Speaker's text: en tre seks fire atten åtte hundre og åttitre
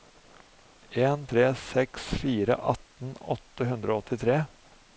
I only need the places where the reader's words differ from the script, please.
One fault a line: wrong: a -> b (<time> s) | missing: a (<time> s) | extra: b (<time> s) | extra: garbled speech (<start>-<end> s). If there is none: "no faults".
no faults